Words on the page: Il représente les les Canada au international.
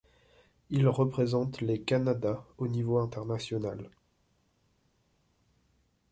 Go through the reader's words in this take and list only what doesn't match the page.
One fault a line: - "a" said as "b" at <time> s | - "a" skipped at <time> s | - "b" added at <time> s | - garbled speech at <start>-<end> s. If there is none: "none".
- "les" skipped at 1.8 s
- "niveau" added at 2.7 s